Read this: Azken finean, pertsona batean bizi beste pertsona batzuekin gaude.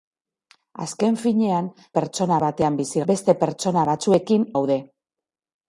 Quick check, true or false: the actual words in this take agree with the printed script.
true